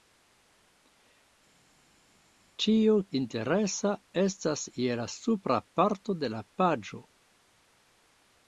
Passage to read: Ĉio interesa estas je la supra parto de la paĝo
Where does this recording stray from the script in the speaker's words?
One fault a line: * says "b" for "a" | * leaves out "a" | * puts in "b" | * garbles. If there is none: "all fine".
all fine